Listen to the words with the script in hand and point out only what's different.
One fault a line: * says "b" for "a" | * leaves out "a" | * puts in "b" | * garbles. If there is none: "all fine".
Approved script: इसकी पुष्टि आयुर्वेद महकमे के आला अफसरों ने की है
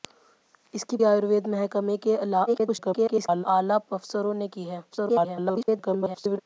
* leaves out "पुष्टि"
* garbles
* garbles